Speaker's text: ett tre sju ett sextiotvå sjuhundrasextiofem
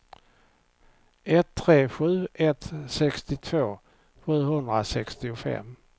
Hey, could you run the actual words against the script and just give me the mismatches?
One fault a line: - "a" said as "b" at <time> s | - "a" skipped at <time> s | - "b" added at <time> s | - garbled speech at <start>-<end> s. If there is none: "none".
none